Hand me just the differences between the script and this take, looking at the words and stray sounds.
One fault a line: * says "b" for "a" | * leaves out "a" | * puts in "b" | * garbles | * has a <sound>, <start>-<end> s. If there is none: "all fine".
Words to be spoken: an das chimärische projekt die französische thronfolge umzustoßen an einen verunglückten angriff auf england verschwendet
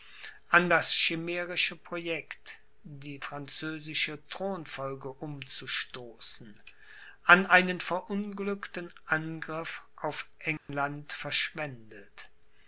* has a dropout, 10.6-10.7 s